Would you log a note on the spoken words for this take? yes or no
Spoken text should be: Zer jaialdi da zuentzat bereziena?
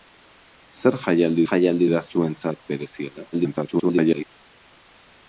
yes